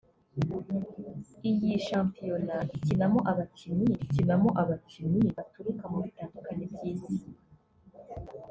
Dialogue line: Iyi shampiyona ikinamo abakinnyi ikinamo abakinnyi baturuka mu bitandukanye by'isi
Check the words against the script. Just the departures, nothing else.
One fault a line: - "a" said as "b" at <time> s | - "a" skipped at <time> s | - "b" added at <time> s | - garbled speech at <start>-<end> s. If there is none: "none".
none